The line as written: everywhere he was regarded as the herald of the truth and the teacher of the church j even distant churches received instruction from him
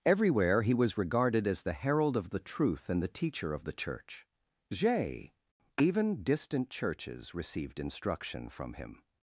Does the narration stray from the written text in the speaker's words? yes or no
no